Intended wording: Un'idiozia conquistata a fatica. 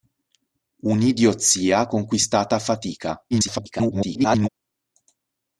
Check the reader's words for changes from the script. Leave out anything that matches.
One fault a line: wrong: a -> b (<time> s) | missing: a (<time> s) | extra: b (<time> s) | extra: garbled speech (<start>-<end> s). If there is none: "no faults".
extra: garbled speech (3.3-4.5 s)